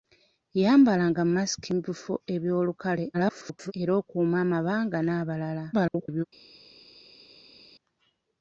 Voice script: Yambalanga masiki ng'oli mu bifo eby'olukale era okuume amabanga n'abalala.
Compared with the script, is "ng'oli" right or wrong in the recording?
wrong